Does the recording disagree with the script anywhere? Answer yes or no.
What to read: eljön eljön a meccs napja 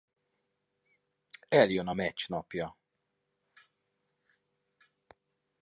yes